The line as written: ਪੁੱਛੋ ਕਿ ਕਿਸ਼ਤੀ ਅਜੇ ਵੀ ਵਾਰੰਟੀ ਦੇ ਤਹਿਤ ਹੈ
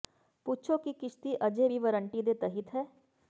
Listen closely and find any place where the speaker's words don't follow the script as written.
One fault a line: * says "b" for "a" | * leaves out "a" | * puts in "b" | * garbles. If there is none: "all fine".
all fine